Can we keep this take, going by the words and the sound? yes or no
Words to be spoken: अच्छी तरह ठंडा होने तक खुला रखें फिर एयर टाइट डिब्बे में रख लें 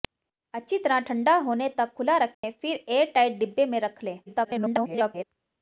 no